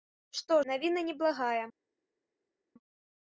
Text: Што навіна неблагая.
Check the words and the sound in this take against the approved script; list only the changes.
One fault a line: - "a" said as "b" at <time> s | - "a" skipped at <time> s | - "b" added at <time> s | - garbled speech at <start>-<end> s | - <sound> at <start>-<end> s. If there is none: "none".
none